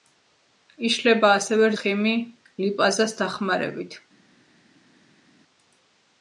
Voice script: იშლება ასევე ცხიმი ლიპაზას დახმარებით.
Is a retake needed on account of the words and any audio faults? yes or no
no